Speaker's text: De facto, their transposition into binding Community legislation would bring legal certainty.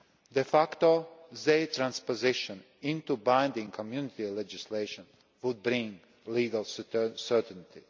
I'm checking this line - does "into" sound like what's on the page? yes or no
yes